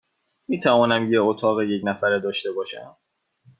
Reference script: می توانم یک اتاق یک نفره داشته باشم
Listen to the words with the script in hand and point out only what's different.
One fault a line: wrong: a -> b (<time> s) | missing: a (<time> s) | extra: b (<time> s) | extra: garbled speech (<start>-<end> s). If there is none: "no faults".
no faults